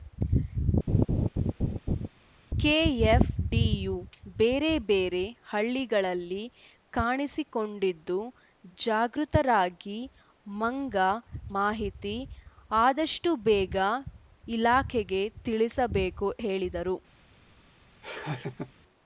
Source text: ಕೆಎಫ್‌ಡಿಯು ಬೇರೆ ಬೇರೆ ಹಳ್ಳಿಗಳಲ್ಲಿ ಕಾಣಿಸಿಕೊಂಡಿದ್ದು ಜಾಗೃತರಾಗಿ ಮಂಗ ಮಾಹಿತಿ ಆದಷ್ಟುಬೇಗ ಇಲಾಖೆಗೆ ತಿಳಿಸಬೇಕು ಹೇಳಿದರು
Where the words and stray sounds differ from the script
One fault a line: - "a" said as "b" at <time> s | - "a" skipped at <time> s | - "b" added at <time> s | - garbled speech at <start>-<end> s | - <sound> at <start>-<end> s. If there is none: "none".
- laugh at 0.9-2.1 s
- laugh at 18.0-18.7 s